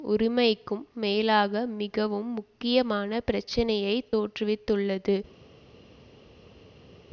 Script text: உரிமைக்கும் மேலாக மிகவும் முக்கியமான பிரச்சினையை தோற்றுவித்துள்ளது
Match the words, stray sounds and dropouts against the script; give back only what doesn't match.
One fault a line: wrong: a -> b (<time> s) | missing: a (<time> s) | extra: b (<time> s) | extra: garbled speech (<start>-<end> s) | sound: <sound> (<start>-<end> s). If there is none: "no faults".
no faults